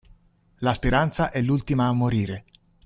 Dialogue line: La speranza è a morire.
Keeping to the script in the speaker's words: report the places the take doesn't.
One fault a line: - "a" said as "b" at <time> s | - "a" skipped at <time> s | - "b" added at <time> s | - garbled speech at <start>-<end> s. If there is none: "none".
- "l'ultima" added at 1.4 s